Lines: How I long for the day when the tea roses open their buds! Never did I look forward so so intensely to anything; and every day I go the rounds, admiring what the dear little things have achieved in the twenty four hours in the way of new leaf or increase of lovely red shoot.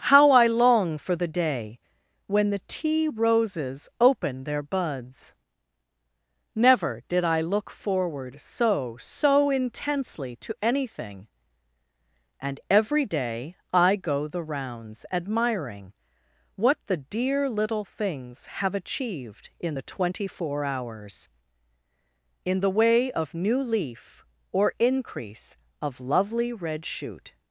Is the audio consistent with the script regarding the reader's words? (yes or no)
yes